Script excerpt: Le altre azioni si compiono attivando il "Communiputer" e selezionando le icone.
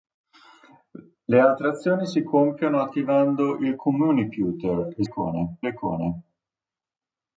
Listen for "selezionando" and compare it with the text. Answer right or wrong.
wrong